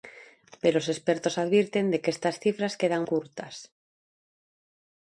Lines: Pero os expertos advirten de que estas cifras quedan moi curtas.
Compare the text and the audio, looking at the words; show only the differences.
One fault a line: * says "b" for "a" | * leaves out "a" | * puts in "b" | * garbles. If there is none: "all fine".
* leaves out "moi"